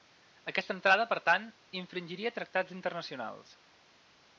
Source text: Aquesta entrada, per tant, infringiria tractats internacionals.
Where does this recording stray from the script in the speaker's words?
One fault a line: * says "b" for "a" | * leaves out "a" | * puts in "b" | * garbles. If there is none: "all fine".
all fine